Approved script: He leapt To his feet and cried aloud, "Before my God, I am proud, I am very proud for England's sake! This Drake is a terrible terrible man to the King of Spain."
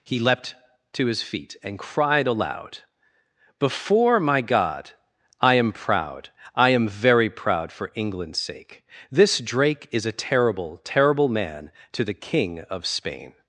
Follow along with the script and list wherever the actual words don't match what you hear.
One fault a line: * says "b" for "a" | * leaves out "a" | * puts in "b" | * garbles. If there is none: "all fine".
all fine